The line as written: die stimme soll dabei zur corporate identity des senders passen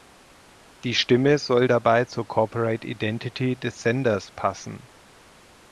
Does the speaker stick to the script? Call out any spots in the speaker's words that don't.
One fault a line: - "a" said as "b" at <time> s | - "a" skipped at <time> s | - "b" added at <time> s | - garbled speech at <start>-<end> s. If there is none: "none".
none